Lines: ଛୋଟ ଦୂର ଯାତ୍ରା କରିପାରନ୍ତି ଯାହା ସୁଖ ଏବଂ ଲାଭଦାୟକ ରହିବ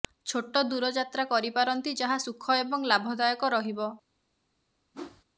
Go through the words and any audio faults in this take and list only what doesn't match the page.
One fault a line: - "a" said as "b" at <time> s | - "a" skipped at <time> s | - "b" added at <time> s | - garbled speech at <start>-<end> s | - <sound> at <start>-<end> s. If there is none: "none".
- whoosh at 4.9-5.2 s